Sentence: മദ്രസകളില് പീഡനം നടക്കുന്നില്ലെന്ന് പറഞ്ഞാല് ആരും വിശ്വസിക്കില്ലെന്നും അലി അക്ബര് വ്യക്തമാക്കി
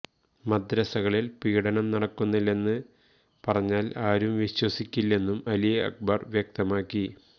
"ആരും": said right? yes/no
yes